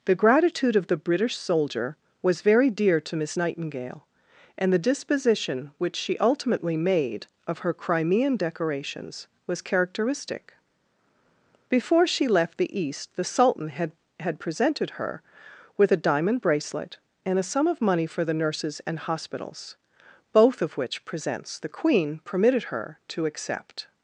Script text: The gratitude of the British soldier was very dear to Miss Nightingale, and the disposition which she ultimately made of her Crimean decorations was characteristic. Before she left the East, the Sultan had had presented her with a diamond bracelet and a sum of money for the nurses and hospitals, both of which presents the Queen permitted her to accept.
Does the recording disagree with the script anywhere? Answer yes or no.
no